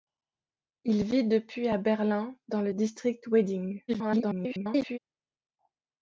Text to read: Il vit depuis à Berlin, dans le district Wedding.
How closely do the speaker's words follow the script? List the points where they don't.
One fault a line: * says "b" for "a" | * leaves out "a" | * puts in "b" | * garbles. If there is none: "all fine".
* garbles